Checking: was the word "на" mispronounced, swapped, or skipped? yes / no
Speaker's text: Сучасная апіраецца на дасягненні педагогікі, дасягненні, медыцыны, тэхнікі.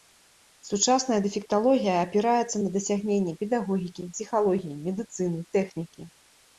no